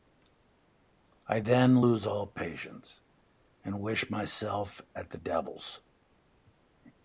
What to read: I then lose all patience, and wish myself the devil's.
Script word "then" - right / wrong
right